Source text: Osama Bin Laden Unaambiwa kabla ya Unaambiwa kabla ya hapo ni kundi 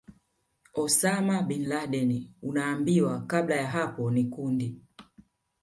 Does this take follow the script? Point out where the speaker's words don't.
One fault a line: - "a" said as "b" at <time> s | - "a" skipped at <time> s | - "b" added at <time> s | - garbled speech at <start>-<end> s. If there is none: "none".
- "Unaambiwa kabla ya" skipped at 3.7 s